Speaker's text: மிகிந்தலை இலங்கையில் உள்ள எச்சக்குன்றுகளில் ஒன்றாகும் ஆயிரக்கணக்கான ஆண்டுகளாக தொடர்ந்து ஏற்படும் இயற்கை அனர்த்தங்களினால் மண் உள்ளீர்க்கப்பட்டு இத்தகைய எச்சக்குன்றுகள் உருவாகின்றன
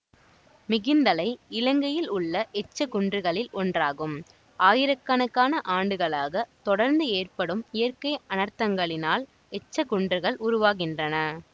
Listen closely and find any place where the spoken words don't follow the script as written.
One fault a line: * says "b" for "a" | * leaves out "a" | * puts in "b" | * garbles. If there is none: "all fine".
* leaves out "மண் உள்ளீர்க்கப்பட்டு இத்தகைய"